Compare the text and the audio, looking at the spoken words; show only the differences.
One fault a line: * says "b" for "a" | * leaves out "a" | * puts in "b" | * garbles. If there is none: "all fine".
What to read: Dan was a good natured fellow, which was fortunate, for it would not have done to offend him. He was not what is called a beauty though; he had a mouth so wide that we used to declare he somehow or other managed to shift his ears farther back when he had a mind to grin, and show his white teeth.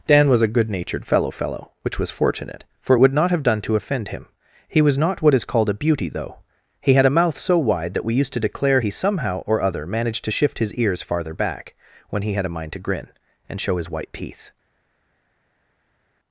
* puts in "fellow"